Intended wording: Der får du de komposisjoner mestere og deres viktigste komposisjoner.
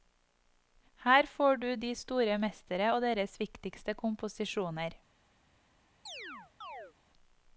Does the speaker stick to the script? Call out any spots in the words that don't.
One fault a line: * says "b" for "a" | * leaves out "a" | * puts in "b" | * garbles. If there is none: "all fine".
* says "Her" for "Der"
* says "store" for "komposisjoner"